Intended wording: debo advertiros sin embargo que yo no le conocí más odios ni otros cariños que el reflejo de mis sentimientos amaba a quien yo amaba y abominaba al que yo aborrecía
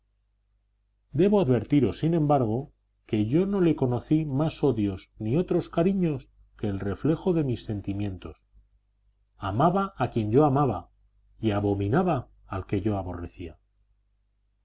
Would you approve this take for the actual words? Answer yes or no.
yes